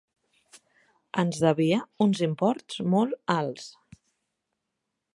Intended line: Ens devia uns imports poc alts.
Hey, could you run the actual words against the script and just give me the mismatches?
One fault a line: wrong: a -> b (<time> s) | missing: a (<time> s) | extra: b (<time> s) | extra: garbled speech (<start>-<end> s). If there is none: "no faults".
wrong: poc -> molt (3.0 s)